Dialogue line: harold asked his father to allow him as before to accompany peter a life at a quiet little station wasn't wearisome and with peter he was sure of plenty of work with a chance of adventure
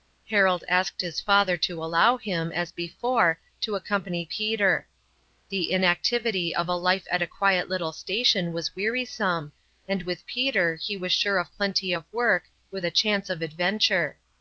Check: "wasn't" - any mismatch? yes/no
yes